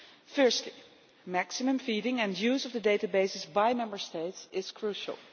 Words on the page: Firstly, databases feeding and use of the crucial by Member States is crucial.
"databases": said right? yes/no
no